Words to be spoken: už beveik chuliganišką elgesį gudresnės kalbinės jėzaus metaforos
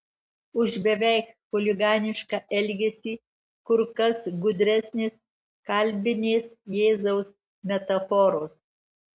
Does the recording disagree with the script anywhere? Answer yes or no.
yes